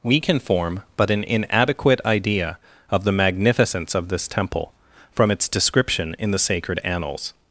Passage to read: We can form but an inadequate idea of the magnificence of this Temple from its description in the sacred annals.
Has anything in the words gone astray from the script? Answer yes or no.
no